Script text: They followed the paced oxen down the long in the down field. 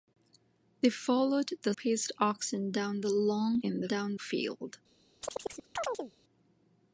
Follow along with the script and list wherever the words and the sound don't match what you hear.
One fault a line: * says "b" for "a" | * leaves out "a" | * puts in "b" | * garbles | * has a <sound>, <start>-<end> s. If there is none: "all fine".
* has a chirp, 5.2-6.1 s